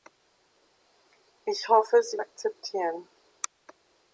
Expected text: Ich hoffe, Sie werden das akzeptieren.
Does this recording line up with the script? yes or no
no